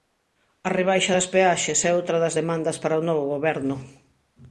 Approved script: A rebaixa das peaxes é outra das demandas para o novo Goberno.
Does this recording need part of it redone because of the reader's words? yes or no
no